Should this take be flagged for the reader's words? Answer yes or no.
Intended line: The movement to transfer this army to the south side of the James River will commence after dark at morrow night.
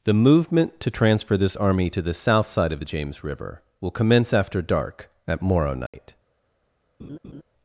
no